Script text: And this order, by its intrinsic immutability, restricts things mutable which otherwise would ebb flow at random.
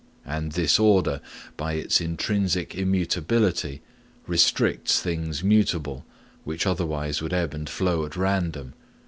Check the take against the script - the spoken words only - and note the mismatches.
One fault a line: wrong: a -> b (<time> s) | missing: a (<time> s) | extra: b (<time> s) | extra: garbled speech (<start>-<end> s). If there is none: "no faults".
extra: and (7.5 s)